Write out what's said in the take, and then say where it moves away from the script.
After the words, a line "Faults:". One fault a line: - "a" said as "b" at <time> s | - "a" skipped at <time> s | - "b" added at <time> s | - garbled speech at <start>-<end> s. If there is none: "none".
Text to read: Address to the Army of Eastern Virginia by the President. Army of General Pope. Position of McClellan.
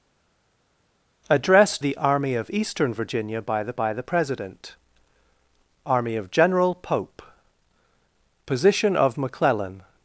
Address the Army of Eastern Virginia by the by the President. Army of General Pope. Position of McClellan.
Faults:
- "to" skipped at 1.8 s
- "by the" added at 3.7 s